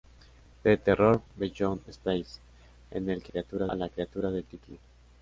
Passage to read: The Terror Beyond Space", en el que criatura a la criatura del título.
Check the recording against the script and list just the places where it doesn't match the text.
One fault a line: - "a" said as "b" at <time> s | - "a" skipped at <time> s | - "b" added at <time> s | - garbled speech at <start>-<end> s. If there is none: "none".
none